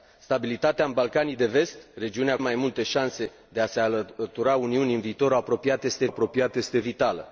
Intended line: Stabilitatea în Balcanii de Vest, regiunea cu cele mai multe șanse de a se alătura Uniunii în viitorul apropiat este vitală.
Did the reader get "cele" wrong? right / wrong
wrong